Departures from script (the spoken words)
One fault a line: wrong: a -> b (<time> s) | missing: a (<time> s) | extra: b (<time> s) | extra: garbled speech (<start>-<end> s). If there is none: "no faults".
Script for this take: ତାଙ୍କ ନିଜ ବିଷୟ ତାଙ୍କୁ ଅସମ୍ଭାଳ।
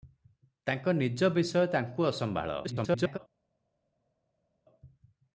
extra: garbled speech (2.6-3.2 s)